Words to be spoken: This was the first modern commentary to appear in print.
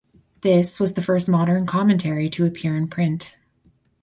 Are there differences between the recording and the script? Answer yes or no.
no